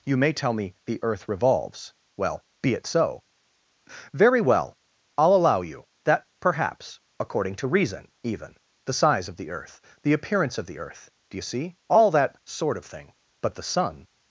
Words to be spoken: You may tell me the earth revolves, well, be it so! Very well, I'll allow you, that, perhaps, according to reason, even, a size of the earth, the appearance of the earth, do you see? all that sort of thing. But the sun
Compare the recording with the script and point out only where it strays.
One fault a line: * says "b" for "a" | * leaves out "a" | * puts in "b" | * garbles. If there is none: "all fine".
* says "the" for "a"